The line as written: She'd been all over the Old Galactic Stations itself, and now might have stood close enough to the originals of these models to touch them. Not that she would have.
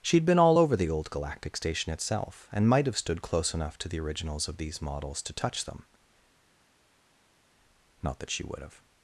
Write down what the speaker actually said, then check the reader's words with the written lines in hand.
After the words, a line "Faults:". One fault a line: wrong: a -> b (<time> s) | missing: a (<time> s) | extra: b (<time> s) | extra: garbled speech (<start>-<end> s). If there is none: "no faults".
She'd been all over the Old Galactic Station itself, and might have stood close enough to the originals of these models to touch them. Not that she would have.
Faults:
wrong: Stations -> Station (1.6 s)
missing: now (2.7 s)